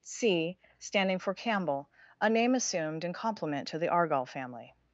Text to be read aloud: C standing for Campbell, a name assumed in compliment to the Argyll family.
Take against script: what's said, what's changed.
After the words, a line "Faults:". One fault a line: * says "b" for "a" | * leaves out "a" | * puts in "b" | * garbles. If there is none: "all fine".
C standing for Campbell, a name assumed in compliment to the Argyll family.
Faults:
all fine